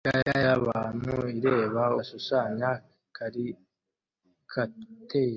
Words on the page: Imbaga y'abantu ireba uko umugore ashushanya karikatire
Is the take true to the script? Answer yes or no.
no